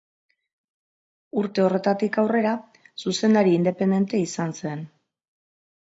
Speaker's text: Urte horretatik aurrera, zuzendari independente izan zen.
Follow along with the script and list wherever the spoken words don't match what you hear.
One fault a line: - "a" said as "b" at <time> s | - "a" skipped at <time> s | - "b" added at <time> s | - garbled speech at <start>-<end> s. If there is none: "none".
none